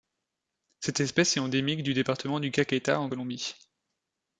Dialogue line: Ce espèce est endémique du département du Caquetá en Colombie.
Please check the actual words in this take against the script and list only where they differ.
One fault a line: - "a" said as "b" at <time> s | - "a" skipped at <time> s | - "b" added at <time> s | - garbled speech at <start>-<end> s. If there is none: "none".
- "Ce" said as "Cette" at 0.8 s